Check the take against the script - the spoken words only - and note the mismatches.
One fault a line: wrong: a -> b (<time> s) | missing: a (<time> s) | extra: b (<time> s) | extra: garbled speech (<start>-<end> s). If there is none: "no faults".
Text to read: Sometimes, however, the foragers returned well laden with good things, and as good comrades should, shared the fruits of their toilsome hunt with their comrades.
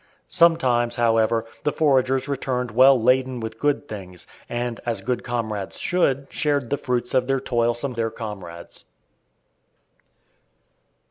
missing: hunt with (7.9 s)